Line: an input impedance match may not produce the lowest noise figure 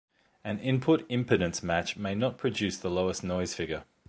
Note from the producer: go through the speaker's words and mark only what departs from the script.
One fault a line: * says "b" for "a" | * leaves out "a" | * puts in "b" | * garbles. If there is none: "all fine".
all fine